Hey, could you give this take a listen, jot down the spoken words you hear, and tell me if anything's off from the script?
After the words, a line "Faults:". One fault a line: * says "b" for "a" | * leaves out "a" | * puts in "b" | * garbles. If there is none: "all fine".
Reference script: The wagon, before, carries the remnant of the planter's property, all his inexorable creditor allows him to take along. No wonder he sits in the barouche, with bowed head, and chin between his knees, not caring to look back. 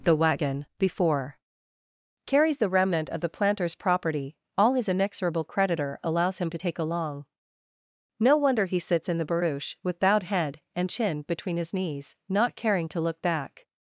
The wagon, before, carries the remnant of the planter's property, all his inexorable creditor allows him to take along. No wonder he sits in the barouche, with bowed head, and chin between his knees, not caring to look back.
Faults:
all fine